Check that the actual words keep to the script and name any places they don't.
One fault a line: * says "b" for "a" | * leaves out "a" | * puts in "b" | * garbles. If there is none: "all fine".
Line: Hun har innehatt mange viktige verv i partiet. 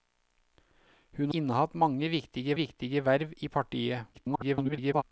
* leaves out "har"
* puts in "viktige"
* garbles